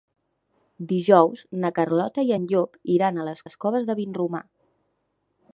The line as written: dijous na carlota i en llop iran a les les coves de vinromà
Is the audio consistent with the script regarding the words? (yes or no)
yes